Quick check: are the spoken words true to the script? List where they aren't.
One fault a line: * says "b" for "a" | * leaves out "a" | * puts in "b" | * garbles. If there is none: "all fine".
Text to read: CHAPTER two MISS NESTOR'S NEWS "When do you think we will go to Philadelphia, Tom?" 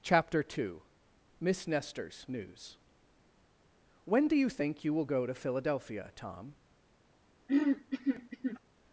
* says "you" for "we"